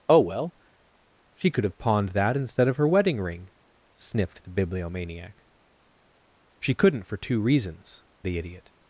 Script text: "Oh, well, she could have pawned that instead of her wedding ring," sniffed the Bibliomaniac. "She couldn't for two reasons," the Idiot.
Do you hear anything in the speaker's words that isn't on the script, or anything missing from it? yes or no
no